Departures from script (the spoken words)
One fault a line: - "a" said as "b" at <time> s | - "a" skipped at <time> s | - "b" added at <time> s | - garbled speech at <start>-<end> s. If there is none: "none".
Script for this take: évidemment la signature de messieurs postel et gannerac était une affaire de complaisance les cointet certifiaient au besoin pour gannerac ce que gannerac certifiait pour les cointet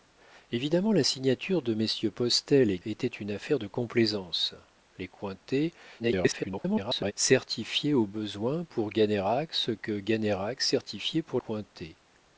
- "gannerac" skipped at 2.8 s
- garbled speech at 6.0-7.1 s
- "les" skipped at 11.4 s